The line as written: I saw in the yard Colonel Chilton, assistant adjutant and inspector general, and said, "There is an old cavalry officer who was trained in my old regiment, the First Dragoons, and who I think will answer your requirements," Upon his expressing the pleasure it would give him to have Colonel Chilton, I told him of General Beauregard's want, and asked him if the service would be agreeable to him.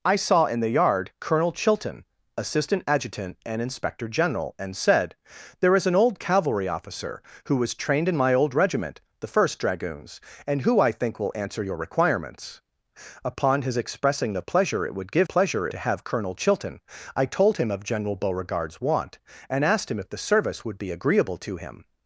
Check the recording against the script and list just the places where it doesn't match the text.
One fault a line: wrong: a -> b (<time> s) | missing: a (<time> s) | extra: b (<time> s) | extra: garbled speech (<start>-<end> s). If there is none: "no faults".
wrong: him -> pleasure (15.2 s)